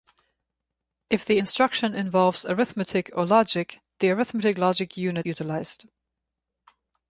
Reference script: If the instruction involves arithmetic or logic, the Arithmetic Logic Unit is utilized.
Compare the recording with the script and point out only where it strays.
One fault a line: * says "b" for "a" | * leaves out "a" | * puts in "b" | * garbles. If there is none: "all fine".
* leaves out "is"